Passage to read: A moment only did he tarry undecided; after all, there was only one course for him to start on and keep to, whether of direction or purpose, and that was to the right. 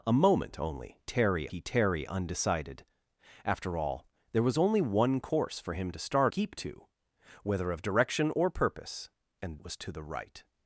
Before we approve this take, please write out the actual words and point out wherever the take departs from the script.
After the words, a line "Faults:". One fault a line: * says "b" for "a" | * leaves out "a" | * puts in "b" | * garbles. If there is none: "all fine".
A moment only tarry he tarry undecided; after all, there was only one course for him to start keep to, whether of direction or purpose, and was to the right.
Faults:
* says "tarry" for "did"
* leaves out "on and"
* leaves out "that"